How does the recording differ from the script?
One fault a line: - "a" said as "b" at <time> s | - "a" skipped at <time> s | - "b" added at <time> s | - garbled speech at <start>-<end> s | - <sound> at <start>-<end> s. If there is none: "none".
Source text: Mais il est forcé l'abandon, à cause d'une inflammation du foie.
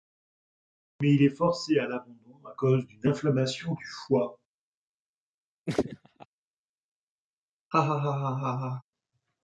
- "à" added at 1.8 s
- laugh at 5.7-6.3 s
- laugh at 7.7-8.8 s